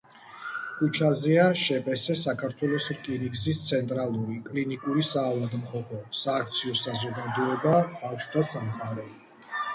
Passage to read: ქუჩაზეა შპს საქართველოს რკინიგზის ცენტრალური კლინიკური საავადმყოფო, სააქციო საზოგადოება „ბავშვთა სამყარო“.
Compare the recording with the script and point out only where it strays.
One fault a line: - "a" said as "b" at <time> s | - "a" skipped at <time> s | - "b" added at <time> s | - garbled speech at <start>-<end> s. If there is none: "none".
none